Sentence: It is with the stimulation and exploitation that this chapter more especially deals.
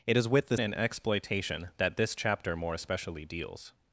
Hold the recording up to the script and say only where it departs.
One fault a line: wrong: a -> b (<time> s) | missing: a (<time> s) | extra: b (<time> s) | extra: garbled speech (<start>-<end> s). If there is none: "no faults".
missing: stimulation (0.6 s)